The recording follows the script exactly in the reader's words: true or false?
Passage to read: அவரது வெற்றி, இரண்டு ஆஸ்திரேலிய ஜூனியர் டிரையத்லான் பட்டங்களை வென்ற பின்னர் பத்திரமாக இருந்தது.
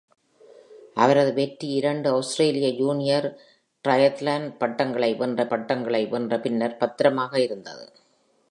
false